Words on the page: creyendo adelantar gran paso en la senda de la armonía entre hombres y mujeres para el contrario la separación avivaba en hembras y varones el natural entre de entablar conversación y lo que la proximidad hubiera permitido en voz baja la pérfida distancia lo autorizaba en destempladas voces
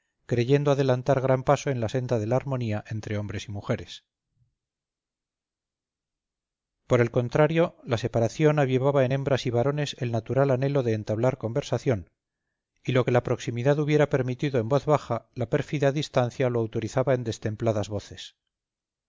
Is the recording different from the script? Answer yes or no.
yes